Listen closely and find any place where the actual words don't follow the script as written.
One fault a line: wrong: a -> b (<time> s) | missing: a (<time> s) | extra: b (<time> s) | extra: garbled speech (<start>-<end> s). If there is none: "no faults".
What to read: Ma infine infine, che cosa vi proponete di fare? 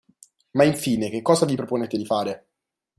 missing: infine (1.1 s)